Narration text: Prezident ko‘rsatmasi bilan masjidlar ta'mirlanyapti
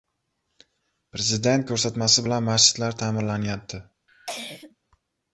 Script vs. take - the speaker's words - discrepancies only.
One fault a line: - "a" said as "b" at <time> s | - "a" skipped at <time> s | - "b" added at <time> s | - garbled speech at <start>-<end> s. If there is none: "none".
none